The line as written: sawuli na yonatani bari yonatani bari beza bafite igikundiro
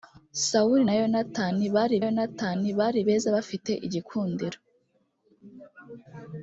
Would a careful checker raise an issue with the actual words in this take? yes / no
no